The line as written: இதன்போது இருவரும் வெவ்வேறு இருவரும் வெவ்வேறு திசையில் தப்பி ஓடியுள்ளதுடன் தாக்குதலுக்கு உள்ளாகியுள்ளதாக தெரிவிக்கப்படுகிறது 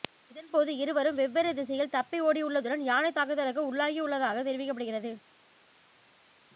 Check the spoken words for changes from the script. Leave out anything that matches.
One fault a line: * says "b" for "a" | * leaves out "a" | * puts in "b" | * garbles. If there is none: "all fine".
* leaves out "இருவரும் வெவ்வேறு"
* puts in "யானை"